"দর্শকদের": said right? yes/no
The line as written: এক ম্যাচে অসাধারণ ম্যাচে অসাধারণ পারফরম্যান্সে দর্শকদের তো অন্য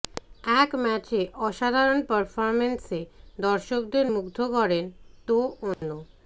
no